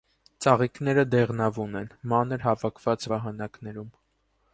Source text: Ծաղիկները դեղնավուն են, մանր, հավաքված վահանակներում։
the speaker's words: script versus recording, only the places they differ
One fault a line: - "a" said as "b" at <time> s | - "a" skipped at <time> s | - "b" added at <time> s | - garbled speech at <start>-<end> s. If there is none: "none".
none